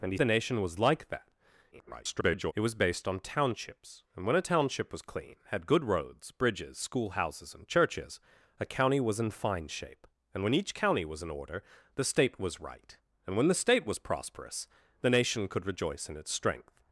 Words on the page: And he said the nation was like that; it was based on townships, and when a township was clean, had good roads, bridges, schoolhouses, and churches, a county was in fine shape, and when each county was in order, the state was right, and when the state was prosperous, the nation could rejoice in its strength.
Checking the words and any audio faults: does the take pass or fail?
fail